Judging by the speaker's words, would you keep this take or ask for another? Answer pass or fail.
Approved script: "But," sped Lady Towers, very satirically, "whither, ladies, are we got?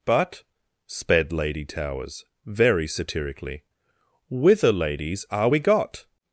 pass